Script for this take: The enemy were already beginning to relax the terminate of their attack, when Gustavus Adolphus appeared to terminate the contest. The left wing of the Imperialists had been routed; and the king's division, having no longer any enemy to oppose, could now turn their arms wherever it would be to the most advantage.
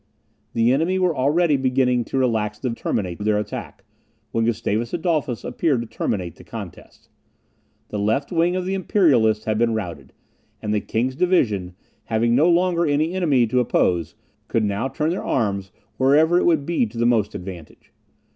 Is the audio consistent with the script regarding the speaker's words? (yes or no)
yes